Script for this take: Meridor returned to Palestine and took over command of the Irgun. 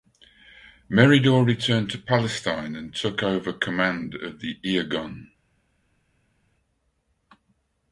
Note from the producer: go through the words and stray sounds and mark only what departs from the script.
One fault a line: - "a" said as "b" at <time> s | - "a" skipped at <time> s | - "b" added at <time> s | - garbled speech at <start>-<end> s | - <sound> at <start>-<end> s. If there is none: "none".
none